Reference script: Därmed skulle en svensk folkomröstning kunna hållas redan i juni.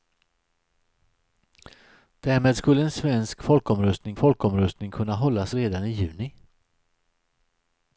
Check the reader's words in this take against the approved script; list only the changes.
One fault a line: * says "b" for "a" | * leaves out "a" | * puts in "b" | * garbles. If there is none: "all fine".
* puts in "folkomröstning"